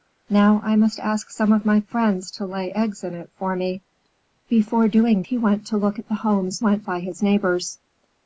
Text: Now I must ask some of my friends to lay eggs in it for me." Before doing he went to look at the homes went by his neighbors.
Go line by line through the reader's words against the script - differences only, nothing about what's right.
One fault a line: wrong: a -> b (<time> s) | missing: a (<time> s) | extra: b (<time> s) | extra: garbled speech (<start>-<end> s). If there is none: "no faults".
no faults